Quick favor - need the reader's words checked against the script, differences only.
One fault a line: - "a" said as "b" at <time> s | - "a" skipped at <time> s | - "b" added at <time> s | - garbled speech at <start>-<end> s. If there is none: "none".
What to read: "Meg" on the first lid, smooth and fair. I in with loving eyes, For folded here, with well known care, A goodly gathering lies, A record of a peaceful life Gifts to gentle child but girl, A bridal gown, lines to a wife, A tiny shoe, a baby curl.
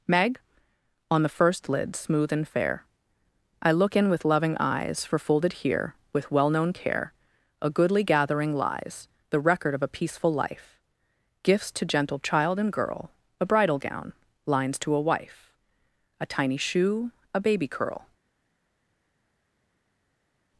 - "look" added at 3.7 s
- "A" said as "The" at 9.3 s
- "but" said as "and" at 12.6 s